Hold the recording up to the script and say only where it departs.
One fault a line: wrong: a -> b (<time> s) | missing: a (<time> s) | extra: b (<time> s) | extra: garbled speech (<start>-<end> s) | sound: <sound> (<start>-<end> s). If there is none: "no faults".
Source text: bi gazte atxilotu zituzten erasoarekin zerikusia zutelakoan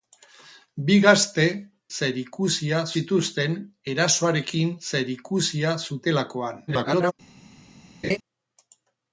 wrong: atxilotu -> zerikusia (2.0 s)
extra: garbled speech (6.7-7.1 s)
sound: laugh (8.0-8.2 s)